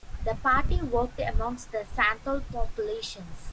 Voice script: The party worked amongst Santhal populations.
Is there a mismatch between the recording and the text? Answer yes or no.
yes